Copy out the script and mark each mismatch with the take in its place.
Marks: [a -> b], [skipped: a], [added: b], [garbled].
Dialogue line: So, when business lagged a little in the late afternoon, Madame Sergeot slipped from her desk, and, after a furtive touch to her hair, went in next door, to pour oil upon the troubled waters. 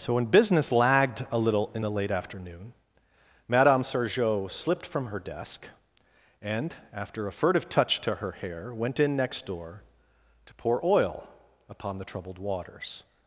So, when business lagged a little in the late afternoon, Madame Sergeot slipped from her desk, and, after a furtive touch to her hair, went in next door, to pour oil upon the troubled waters.